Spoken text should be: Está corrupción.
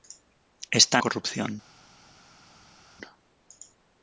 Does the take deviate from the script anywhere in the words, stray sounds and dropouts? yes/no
no